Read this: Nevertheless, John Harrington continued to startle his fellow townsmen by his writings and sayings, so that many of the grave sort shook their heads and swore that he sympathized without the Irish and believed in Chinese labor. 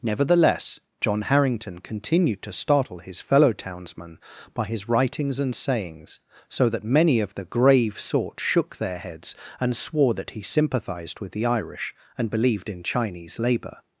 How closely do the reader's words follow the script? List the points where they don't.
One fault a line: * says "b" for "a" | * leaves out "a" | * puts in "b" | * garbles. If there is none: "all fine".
* says "with" for "without"